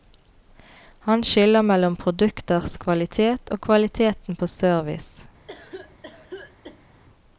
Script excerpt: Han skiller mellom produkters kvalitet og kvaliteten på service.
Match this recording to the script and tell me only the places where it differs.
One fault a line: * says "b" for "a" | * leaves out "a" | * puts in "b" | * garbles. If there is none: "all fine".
all fine